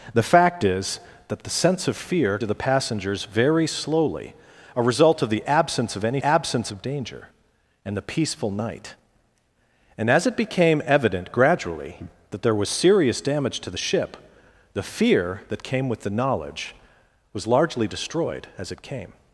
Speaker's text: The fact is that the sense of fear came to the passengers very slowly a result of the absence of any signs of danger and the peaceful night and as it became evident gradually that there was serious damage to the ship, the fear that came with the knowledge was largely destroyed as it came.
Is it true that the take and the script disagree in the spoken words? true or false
true